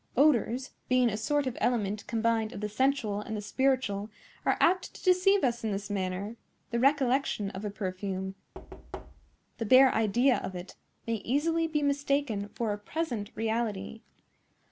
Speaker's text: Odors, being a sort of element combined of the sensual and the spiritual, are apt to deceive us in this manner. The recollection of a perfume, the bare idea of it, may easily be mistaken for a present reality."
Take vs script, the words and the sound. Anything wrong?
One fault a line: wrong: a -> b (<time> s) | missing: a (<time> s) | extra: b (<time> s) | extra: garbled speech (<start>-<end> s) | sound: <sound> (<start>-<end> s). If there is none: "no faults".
sound: thud (8.5-9.4 s)